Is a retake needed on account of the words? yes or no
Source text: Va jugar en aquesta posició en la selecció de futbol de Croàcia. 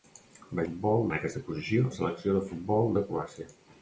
yes